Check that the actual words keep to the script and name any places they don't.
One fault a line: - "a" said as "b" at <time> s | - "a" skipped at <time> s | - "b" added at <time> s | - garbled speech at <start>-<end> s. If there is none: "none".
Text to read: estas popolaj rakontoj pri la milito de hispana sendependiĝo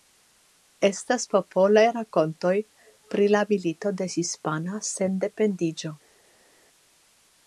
none